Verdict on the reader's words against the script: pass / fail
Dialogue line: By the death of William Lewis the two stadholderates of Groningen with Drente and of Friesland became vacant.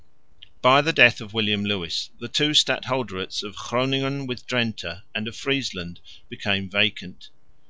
pass